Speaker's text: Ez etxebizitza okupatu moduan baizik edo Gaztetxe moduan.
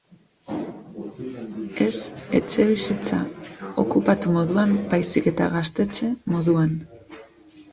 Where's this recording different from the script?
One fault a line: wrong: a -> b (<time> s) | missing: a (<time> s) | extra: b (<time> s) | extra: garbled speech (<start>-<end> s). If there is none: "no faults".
wrong: edo -> eta (5.3 s)